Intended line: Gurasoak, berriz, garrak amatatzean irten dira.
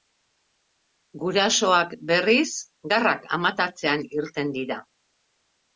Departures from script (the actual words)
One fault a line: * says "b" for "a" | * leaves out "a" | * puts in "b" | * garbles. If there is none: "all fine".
all fine